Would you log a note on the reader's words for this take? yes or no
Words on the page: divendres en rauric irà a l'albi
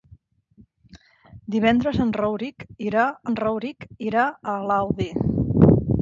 yes